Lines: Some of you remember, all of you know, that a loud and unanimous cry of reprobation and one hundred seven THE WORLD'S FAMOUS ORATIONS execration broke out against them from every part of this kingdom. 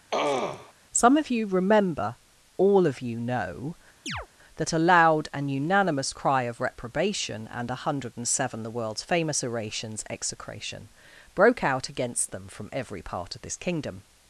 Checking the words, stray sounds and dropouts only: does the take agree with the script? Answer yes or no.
no